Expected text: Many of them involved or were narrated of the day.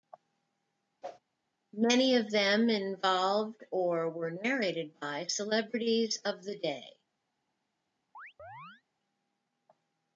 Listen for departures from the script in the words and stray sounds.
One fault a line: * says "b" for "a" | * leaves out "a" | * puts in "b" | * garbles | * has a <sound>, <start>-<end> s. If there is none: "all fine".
* has a whoosh, 1.0-1.2 s
* puts in "by celebrities"
* has a chirp, 8.1-8.8 s